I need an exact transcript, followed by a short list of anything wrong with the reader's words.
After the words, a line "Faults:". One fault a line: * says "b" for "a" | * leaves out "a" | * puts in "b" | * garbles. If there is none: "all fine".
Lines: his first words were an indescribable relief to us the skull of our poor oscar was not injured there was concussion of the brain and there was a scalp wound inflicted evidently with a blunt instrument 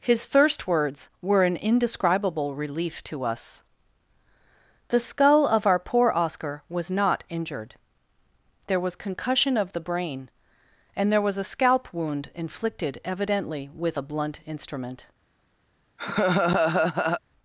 his thirst words were an indescribable relief to us the skull of our poor oscar was not injured there was concussion of the brain and there was a scalp wound inflicted evidently with a blunt instrument
Faults:
* says "thirst" for "first"